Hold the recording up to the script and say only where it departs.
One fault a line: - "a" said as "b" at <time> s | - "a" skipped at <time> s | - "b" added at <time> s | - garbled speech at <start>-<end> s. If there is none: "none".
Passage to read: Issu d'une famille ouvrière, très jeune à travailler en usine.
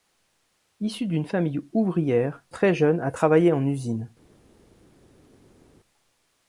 none